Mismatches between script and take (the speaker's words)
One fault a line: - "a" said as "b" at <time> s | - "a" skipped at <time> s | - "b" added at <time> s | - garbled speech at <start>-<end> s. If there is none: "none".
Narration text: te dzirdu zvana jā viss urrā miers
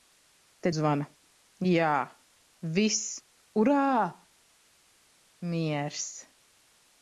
- "dzirdu" skipped at 0.7 s